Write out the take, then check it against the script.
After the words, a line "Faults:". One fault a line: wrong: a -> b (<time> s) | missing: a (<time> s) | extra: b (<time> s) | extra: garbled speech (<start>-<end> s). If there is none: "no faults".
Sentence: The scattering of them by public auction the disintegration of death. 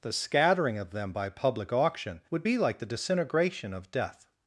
The scattering of them by public auction would be like the disintegration of death.
Faults:
extra: would be like (2.3 s)